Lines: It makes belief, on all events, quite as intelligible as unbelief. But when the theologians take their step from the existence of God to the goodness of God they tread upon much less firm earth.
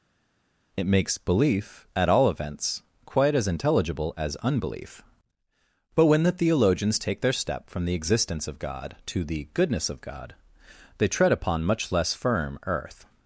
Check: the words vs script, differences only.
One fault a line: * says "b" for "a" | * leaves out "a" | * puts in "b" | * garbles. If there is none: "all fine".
* says "at" for "on"